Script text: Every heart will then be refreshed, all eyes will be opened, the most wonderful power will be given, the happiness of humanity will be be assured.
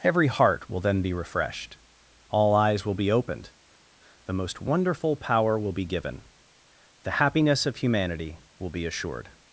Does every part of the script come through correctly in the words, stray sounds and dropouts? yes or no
no